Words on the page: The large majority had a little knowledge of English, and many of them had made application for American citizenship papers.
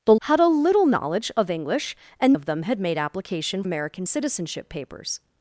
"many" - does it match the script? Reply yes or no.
no